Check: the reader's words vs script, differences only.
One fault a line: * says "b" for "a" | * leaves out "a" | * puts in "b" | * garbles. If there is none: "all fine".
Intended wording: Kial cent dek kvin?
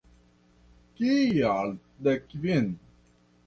* leaves out "cent"